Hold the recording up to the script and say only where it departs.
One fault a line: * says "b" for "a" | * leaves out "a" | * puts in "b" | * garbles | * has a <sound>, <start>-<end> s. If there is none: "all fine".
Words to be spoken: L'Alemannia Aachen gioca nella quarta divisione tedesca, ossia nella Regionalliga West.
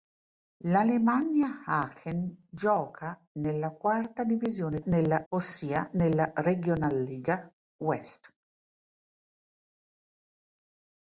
* says "nella" for "tedesca"